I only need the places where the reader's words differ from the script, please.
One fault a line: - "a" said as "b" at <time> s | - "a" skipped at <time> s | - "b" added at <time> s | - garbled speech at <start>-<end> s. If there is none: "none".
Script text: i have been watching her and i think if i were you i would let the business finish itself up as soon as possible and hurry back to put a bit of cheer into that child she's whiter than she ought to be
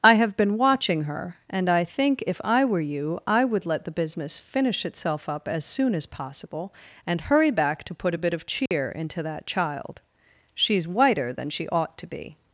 none